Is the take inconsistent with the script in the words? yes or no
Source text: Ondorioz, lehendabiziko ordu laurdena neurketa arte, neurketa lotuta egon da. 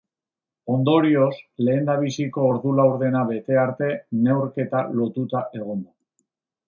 yes